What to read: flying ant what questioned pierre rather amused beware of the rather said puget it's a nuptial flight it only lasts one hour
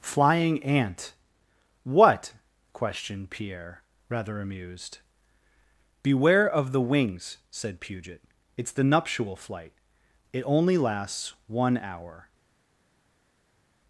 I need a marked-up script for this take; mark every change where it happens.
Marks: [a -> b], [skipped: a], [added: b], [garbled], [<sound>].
flying ant what questioned pierre rather amused beware of the [rather -> wings] said puget it's [a -> the] nuptial flight it only lasts one hour